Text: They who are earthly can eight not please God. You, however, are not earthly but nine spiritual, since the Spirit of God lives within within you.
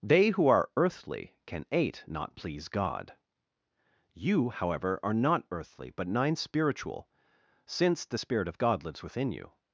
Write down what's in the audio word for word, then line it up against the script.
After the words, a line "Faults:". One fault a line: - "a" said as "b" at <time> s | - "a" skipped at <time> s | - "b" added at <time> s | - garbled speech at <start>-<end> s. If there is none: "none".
They who are earthly can eight not please God. You, however, are not earthly but nine spiritual, since the Spirit of God lives within you.
Faults:
- "within" skipped at 9.3 s